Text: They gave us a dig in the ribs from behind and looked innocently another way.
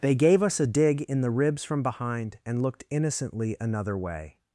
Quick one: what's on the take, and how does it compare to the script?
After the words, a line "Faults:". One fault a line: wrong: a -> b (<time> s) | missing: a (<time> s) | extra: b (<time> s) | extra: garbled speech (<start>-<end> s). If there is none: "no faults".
They gave us a dig in the ribs from behind and looked innocently another way.
Faults:
no faults